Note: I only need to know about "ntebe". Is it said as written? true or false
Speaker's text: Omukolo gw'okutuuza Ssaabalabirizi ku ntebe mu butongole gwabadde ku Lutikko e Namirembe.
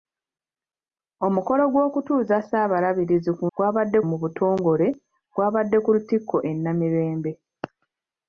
false